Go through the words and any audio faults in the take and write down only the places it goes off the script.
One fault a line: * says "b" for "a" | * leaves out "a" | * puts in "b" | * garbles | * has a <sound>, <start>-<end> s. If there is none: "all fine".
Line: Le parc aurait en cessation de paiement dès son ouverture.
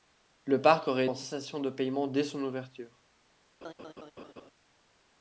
* has a laugh, 3.6-4.5 s